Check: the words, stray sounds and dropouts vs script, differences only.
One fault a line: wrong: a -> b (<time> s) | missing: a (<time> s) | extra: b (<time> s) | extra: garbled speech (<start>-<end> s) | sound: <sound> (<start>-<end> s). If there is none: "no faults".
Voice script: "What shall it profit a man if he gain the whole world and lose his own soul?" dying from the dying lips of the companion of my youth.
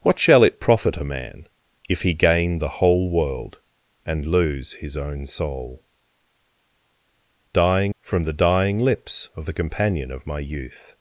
no faults